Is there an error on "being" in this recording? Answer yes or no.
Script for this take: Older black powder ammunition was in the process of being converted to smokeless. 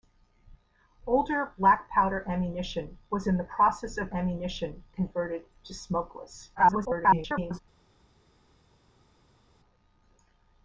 yes